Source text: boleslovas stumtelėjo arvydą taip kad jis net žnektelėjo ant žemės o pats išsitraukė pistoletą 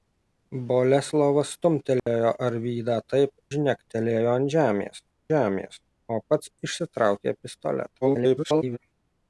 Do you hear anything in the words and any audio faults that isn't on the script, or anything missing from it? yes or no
yes